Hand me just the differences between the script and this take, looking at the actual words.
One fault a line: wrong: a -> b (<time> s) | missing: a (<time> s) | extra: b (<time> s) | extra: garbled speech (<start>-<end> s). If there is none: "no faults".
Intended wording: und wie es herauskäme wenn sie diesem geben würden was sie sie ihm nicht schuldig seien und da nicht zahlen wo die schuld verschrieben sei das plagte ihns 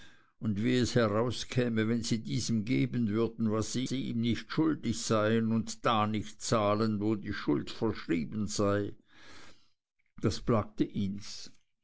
no faults